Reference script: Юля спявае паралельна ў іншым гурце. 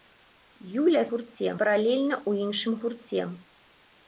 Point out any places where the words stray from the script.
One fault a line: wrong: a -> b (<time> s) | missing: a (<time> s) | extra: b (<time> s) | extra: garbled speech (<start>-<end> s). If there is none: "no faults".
wrong: спявае -> гурце (1.1 s)